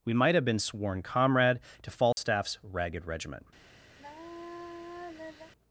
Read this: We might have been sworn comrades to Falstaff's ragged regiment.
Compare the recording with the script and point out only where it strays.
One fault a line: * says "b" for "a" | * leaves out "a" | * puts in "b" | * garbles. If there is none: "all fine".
* says "comrade" for "comrades"